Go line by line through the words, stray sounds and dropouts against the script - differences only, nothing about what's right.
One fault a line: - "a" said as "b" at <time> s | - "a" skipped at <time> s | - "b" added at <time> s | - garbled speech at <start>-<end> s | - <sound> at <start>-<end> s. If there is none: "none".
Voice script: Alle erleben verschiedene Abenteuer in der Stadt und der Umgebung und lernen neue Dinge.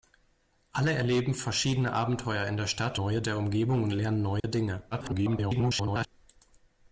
- "und" said as "neue" at 2.9 s
- dropout at 4.4-4.4 s
- garbled speech at 4.9-6.1 s